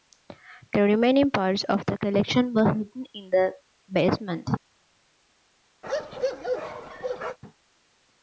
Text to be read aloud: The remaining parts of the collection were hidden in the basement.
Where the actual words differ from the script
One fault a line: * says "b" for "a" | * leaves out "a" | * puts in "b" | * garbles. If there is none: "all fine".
all fine